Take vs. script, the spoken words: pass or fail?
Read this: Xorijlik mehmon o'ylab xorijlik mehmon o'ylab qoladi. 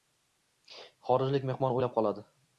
fail